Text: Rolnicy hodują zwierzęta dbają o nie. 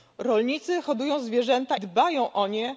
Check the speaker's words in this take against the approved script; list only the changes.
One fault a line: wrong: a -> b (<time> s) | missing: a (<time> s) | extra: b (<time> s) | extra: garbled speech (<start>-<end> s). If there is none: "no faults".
no faults